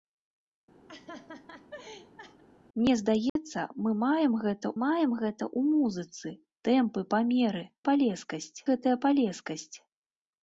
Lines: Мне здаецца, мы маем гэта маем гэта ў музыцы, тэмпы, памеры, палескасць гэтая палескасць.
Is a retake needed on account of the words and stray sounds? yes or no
yes